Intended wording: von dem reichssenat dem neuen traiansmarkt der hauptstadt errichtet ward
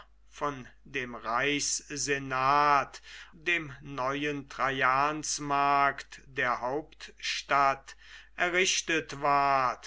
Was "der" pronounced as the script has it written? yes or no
yes